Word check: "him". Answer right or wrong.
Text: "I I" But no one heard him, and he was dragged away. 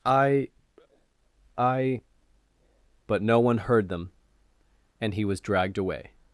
wrong